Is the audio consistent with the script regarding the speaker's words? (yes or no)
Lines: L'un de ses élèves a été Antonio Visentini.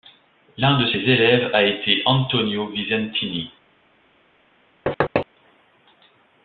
yes